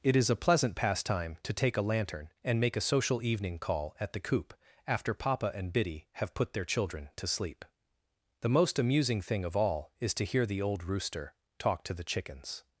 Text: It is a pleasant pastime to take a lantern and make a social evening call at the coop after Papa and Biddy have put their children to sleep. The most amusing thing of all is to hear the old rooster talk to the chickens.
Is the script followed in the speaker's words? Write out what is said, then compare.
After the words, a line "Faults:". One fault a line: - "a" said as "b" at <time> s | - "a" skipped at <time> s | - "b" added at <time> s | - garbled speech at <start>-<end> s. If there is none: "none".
It is a pleasant pastime to take a lantern and make a social evening call at the coop after Papa and Biddy have put their children to sleep. The most amusing thing of all is to hear the old rooster talk to the chickens.
Faults:
none